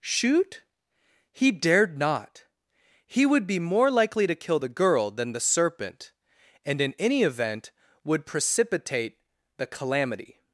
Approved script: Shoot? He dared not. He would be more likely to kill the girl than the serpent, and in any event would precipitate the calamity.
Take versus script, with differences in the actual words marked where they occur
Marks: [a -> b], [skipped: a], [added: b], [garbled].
Shoot? He dared not. He would be more likely to kill the girl than the serpent, and in any event would precipitate the calamity.